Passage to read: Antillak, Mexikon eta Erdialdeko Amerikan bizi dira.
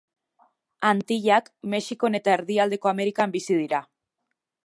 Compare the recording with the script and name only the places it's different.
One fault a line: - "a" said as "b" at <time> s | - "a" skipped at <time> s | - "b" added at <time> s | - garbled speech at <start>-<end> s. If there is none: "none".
none